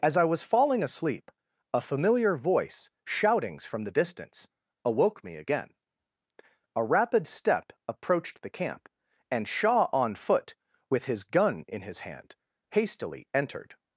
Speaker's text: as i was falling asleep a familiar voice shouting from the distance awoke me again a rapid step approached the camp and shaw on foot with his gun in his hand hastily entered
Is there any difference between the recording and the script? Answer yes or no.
yes